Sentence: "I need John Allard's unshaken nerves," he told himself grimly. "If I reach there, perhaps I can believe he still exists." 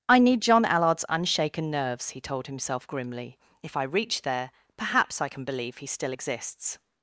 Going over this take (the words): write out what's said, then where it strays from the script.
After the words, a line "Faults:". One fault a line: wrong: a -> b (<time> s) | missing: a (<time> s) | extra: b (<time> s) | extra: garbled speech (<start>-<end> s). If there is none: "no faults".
"I need John Allard's unshaken nerves," he told himself grimly. "If I reach there, perhaps I can believe he still exists."
Faults:
no faults